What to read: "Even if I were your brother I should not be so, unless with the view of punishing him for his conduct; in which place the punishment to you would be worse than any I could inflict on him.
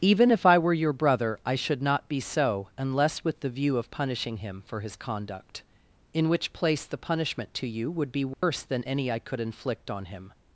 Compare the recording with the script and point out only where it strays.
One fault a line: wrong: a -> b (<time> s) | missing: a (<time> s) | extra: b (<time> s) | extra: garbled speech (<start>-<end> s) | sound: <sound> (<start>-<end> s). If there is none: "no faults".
sound: dropout (8.3-8.4 s)